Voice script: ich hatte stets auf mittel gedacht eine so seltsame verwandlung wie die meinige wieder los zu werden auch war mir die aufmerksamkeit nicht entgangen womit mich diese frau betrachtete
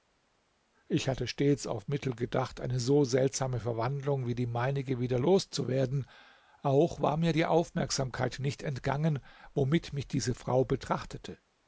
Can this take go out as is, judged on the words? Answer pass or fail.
pass